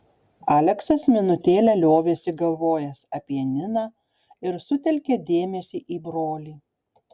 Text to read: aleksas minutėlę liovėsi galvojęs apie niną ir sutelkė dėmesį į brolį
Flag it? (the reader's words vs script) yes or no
no